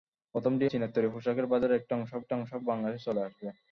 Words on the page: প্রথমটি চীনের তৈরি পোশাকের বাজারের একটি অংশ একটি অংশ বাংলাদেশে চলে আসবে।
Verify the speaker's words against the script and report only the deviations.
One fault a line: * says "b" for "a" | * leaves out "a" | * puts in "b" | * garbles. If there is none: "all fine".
all fine